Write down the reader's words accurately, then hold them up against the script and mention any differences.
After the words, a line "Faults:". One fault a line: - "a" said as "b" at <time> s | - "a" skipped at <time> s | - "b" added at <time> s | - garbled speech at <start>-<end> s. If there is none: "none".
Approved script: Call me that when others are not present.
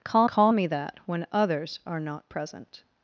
Call call me that when others are not present.
Faults:
- "call" added at 0.3 s